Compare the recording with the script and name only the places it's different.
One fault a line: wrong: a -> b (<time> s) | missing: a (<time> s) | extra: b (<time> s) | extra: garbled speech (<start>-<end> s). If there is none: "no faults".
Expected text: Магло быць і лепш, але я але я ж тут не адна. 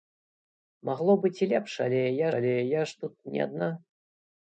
no faults